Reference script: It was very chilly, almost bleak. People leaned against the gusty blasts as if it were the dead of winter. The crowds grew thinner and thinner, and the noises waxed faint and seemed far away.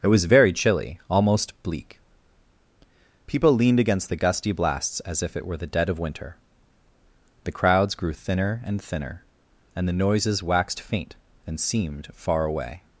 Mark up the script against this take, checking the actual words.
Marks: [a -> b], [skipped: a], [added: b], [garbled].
It was very chilly, almost bleak. People leaned against the gusty blasts as if it were the dead of winter. The crowds grew thinner and thinner, and the noises waxed faint and seemed far away.